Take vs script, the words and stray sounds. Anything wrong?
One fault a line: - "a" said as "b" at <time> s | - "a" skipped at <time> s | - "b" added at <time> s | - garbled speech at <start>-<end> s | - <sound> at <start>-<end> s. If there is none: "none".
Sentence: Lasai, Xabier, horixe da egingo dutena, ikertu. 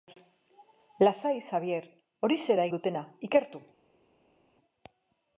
- "egingo" skipped at 2.7 s